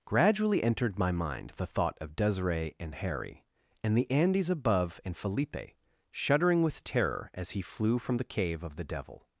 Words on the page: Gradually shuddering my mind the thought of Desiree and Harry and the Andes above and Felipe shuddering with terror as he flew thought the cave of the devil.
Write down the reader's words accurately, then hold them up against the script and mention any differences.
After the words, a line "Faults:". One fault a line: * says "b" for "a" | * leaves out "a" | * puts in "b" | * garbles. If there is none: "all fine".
Gradually entered my mind the thought of Desiree and Harry and the Andes above and Felipe shuddering with terror as he flew from the cave of the devil.
Faults:
* says "entered" for "shuddering"
* says "from" for "thought"